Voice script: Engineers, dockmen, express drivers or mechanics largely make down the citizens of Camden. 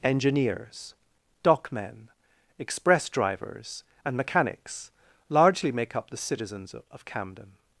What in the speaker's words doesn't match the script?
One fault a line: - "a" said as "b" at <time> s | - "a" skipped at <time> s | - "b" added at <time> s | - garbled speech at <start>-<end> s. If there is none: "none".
- "or" said as "and" at 4.0 s
- "down" said as "up" at 6.0 s